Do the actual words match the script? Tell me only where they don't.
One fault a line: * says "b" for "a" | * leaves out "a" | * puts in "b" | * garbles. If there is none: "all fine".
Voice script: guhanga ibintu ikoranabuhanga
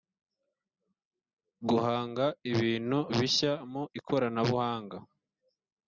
* puts in "bishya mu"